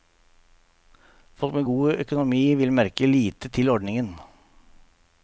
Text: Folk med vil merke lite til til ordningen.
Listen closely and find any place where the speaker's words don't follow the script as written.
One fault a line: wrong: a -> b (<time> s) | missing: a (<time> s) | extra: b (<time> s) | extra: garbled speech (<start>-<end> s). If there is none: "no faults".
extra: god økonomi (1.7 s)
missing: til (3.7 s)